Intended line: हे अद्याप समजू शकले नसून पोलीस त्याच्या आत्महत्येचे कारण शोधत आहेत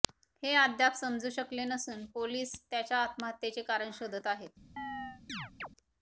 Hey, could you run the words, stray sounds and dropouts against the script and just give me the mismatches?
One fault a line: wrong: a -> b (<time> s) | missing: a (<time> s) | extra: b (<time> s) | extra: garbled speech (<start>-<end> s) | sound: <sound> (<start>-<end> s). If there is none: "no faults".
sound: chirp (4.8-5.7 s)